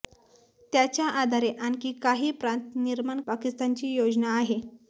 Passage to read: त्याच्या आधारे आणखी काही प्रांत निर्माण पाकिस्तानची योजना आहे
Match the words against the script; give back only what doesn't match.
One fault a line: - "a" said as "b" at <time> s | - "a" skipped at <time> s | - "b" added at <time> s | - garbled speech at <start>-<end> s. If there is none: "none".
none